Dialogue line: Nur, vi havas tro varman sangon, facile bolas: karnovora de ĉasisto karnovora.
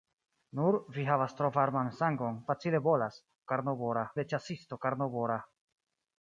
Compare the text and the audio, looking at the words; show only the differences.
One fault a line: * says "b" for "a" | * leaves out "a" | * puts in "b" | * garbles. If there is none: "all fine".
all fine